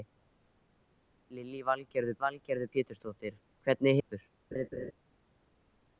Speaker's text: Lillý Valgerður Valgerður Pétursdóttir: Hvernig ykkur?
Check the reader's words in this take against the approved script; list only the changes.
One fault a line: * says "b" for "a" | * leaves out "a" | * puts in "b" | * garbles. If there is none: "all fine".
all fine